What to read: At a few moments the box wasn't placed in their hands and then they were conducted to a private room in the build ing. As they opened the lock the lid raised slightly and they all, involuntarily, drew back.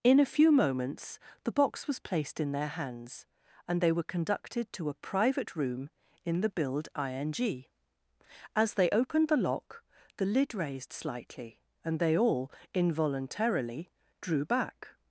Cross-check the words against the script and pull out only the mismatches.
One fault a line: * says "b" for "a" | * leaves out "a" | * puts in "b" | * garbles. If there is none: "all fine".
* says "In" for "At"
* says "was" for "wasn't"
* leaves out "then"